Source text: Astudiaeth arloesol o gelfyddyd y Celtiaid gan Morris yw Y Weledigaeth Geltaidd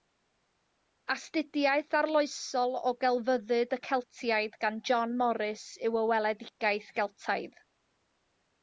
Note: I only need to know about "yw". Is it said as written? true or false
true